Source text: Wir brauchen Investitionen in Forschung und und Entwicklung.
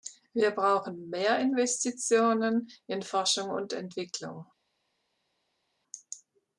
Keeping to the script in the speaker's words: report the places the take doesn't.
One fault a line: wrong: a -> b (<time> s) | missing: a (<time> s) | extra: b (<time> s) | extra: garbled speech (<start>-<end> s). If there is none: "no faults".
extra: mehr (1.1 s)
missing: und (3.7 s)